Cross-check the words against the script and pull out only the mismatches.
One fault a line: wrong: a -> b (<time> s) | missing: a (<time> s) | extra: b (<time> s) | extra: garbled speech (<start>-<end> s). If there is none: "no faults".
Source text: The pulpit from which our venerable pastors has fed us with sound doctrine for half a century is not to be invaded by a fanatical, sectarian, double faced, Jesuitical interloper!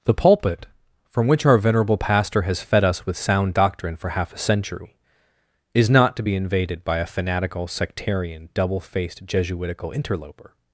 wrong: pastors -> pastor (2.0 s)